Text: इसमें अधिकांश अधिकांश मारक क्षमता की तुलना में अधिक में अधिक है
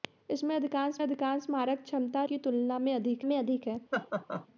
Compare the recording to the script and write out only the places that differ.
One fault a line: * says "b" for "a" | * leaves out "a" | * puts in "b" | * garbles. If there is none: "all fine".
all fine